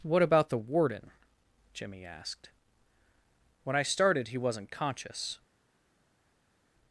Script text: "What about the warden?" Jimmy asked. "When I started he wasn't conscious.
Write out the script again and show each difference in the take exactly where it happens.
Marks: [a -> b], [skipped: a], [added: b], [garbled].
"What about the warden?" Jimmy asked. "When I started he wasn't conscious.